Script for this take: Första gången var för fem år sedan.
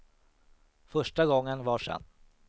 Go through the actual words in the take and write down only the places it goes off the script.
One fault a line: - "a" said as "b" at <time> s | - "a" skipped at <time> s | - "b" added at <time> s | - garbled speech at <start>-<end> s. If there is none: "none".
- "för fem år" skipped at 1.8 s